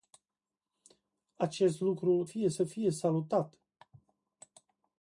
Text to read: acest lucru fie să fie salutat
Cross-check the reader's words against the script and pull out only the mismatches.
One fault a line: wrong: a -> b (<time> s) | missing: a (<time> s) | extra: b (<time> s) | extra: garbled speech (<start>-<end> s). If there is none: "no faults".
no faults